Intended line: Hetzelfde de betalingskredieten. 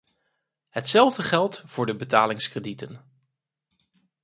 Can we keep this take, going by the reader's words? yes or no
no